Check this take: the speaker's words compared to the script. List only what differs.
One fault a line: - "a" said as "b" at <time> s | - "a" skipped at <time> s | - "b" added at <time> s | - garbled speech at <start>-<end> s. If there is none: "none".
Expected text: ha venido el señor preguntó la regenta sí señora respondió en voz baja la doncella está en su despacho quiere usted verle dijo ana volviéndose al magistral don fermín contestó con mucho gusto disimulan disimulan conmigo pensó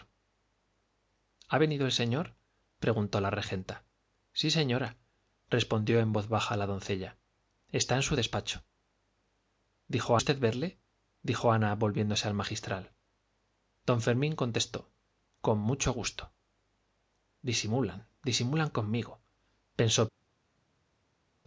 - "quiere" said as "dijo" at 9.9 s